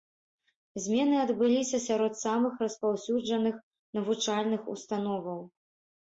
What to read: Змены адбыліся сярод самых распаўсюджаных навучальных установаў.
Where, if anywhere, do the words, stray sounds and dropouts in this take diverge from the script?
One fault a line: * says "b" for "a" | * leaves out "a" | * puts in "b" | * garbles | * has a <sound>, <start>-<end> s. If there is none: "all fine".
all fine